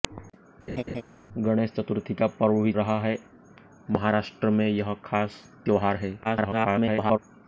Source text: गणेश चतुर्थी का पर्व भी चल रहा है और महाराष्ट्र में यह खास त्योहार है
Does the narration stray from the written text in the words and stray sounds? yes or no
yes